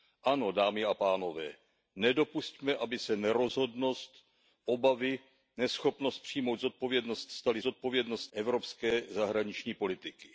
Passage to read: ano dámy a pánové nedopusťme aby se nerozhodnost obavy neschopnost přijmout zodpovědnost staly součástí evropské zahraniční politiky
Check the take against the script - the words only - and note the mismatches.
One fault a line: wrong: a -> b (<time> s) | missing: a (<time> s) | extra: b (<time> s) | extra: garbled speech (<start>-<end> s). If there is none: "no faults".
wrong: součástí -> zodpovědnost (7.6 s)